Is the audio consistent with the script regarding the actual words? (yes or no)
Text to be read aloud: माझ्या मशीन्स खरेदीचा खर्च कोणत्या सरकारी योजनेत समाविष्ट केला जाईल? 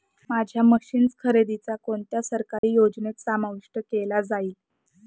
no